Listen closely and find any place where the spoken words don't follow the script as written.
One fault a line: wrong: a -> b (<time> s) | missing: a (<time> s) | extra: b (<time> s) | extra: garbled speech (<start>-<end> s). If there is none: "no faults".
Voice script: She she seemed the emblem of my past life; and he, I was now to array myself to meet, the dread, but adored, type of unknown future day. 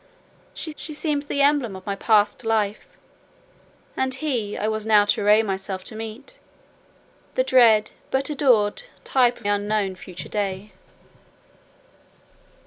no faults